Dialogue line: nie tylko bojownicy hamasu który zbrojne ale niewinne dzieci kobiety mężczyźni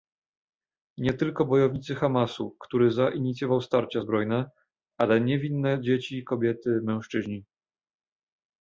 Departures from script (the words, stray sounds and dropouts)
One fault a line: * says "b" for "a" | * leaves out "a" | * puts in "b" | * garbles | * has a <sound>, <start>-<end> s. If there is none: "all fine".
* puts in "zainicjował starcia"